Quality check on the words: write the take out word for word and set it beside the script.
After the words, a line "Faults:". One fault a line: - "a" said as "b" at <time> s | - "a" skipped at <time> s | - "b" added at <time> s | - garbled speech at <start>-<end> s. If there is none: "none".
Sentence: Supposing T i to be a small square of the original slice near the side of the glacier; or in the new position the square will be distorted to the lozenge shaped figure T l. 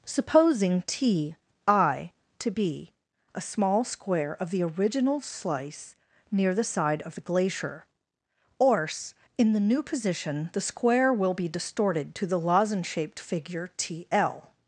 Supposing T i to be a small square of the original slice near the side of the glacier; or in the new position the square will be distorted to the lozenge shaped figure T l.
Faults:
none